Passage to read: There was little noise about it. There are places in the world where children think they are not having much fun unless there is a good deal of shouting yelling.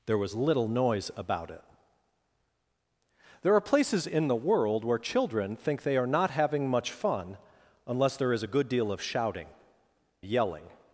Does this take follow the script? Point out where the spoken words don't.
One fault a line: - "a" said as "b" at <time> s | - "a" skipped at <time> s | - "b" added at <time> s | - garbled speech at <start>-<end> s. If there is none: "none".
none